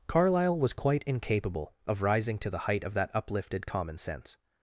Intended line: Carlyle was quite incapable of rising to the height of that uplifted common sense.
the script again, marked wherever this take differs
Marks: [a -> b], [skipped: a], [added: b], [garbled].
Carlyle was quite incapable of rising to the height of that uplifted common sense.